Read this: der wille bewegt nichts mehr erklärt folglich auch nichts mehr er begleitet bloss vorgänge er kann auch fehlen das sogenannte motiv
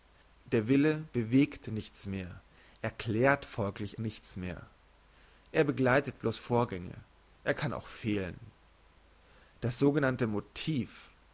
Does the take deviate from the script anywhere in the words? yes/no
yes